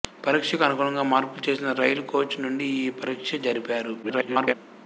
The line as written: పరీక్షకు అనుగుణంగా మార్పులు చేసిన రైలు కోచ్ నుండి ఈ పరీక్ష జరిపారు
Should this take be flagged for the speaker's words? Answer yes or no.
yes